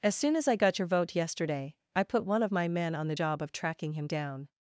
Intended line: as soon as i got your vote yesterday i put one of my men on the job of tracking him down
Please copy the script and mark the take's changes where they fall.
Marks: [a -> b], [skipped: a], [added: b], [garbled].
as soon as i got your vote yesterday i put one of my men on the job of tracking him down